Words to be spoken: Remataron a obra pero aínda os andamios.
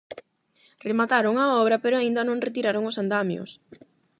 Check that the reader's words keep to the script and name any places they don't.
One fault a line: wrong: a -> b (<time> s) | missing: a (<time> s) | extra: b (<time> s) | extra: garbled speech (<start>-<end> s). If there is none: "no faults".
extra: non retiraron (2.2 s)